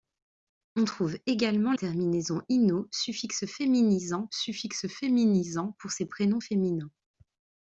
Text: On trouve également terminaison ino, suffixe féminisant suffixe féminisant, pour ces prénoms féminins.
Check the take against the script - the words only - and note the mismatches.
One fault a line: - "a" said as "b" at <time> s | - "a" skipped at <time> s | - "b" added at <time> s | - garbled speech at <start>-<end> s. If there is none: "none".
none